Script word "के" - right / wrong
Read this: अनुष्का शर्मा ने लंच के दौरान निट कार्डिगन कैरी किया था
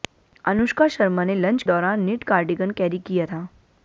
wrong